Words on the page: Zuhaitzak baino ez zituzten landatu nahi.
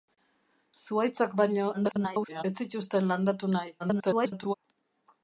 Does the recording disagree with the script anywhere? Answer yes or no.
yes